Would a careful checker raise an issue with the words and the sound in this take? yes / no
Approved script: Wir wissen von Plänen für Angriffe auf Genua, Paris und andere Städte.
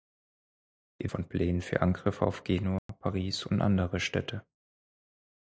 yes